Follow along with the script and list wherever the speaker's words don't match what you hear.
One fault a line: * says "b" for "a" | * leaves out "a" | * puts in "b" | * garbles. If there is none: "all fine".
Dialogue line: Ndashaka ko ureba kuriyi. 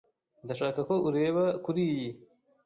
all fine